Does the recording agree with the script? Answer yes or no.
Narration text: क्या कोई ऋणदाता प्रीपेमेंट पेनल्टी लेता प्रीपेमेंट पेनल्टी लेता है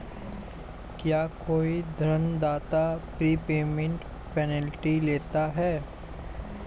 no